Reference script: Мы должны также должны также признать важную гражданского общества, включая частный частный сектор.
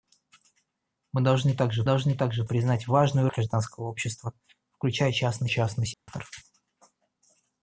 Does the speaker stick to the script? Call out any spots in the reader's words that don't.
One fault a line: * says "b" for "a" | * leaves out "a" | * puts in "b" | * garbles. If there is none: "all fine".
all fine